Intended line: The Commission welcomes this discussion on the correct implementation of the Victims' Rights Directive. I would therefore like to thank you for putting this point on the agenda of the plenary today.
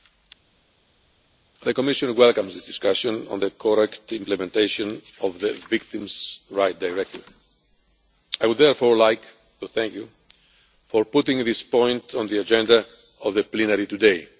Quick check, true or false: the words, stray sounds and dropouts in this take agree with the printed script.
true